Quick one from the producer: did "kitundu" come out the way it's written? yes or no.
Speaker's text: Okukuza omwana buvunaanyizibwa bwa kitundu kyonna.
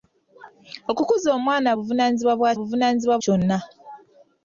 no